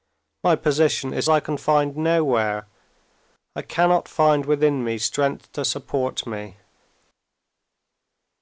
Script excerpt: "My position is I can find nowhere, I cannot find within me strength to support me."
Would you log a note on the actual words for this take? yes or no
no